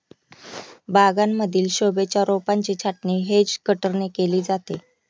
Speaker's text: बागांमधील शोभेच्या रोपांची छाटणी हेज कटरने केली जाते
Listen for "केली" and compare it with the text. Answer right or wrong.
right